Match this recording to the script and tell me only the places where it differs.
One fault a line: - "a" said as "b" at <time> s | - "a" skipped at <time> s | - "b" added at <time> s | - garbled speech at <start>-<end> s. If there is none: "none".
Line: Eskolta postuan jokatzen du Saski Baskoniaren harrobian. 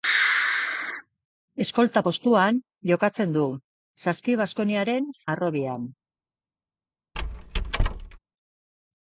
none